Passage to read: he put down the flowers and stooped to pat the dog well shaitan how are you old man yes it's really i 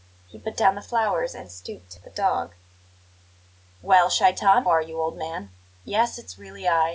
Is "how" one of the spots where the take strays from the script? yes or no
yes